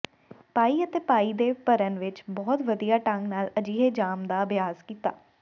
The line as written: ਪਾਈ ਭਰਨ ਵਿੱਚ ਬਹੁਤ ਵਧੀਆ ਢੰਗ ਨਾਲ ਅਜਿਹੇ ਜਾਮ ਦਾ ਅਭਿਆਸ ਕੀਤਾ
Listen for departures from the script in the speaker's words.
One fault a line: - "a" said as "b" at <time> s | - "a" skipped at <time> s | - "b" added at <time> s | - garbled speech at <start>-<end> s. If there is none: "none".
- "ਅਤੇ ਪਾਈ ਦੇ" added at 0.8 s